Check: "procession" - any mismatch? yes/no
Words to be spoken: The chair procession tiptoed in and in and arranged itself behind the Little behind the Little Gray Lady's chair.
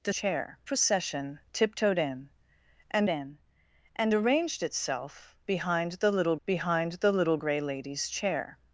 no